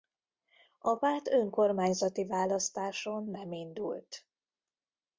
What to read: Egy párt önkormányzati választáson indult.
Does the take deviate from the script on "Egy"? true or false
true